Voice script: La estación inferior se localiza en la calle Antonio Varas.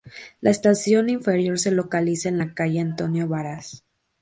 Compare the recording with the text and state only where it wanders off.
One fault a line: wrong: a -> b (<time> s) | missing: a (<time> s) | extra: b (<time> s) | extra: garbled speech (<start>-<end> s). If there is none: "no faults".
no faults